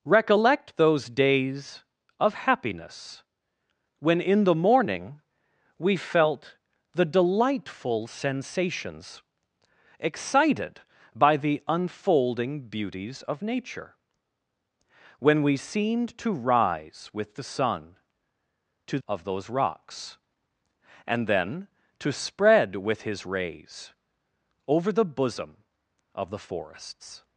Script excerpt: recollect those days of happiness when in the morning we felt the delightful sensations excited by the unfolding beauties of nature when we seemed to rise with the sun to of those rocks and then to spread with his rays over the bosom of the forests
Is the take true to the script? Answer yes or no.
yes